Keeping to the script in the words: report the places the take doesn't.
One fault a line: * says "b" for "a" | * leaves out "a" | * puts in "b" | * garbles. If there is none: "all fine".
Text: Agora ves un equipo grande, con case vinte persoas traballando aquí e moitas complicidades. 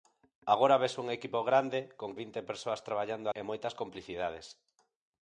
* leaves out "case"
* leaves out "aquí"